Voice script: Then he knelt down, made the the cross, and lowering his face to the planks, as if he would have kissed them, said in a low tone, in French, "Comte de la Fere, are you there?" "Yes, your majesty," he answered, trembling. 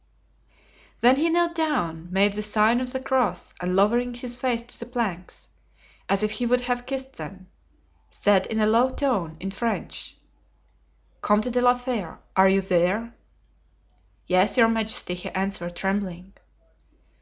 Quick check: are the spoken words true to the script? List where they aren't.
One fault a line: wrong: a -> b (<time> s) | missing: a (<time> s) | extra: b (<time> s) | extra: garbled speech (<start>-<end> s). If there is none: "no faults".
extra: sign of (2.4 s)